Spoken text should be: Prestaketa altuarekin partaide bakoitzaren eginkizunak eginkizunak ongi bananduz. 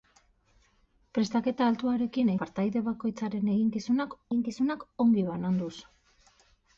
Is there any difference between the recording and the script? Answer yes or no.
no